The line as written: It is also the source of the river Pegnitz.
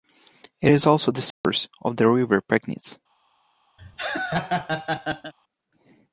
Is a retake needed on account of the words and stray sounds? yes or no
yes